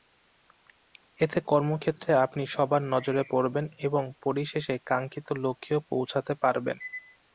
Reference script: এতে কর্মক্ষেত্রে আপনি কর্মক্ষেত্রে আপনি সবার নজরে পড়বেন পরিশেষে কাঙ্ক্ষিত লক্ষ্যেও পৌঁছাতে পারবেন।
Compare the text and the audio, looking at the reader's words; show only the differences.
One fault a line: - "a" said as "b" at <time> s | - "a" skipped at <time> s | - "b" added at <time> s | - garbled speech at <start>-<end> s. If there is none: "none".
- "কর্মক্ষেত্রে আপনি" skipped at 2.4 s
- "এবং" added at 3.9 s